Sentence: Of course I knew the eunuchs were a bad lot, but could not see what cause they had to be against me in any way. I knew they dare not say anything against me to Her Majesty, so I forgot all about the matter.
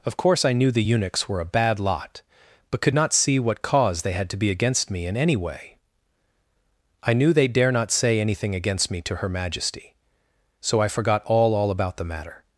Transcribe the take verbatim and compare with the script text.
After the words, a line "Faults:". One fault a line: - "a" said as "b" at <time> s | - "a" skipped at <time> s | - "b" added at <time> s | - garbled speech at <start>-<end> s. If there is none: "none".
Of course I knew the eunuchs were a bad lot, but could not see what cause they had to be against me in any way. I knew they dare not say anything against me to Her Majesty, so I forgot all all about the matter.
Faults:
- "all" added at 11.5 s